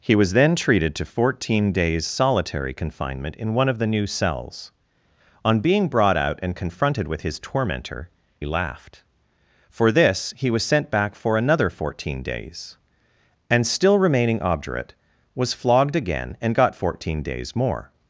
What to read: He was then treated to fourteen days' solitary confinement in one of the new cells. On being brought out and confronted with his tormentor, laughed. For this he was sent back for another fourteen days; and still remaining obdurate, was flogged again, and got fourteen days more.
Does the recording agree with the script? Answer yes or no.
yes